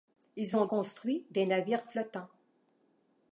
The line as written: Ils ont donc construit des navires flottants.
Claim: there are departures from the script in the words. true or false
true